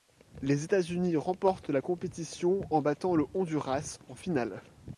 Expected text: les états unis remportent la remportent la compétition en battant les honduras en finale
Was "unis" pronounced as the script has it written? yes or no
yes